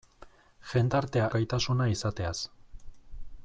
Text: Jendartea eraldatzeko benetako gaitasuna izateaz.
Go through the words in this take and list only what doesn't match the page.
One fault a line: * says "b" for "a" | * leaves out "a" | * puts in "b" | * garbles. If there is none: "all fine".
* leaves out "eraldatzeko benetako"